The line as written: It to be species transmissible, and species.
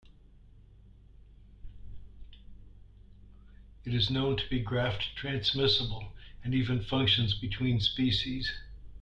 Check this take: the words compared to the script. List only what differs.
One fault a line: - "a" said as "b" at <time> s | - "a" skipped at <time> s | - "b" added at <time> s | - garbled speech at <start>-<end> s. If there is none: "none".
- "is known" added at 3.9 s
- "species" said as "graft" at 4.6 s
- "even functions between" added at 6.5 s